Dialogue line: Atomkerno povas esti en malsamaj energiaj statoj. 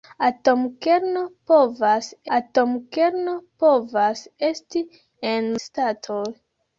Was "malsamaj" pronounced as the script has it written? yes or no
no